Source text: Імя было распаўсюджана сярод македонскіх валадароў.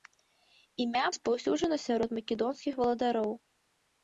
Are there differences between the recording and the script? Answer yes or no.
yes